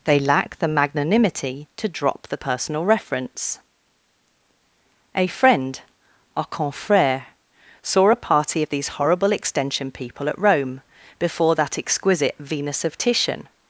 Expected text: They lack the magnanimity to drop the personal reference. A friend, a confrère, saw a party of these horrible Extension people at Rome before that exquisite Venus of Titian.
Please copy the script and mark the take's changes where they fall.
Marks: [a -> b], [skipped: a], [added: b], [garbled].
They lack the magnanimity to drop the personal reference. A friend, a confrère, saw a party of these horrible Extension people at Rome before that exquisite Venus of Titian.